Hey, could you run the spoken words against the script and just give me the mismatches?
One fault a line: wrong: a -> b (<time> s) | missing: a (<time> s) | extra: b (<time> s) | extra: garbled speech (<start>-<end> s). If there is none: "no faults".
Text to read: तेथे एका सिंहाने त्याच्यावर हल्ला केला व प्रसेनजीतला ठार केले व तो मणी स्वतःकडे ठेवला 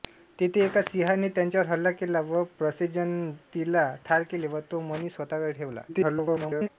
extra: garbled speech (5.9-6.7 s)